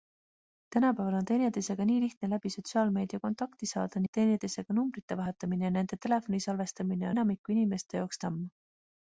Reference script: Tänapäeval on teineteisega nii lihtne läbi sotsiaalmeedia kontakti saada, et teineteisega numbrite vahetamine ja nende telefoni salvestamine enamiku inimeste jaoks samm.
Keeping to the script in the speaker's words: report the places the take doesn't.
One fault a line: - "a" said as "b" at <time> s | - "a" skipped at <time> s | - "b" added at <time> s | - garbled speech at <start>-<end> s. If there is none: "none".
none